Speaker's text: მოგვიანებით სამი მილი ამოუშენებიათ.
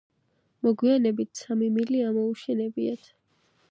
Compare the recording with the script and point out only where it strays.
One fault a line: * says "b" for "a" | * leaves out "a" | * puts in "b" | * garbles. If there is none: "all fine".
all fine